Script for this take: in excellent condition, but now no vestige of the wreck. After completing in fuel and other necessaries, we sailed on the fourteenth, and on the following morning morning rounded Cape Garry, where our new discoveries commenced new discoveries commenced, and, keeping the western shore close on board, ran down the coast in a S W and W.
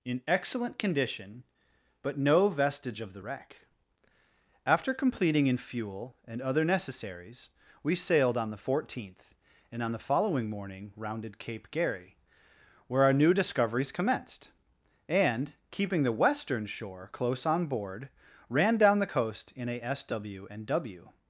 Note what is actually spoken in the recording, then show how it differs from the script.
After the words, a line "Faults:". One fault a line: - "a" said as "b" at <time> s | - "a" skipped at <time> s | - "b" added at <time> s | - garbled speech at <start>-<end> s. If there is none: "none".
in excellent condition, but no vestige of the wreck. After completing in fuel and other necessaries, we sailed on the fourteenth, and on the following morning rounded Cape Garry, where our new discoveries commenced, and, keeping the western shore close on board, ran down the coast in a S W and W.
Faults:
- "now" skipped at 2.2 s
- "morning" skipped at 10.9 s
- "new discoveries commenced" skipped at 14.5 s